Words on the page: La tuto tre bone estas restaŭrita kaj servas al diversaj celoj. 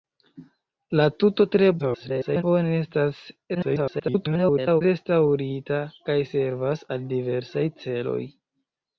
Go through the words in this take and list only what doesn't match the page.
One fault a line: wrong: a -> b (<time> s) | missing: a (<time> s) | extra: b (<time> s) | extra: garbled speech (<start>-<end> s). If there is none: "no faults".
extra: garbled speech (1.8-2.4 s)
extra: garbled speech (3.5-4.8 s)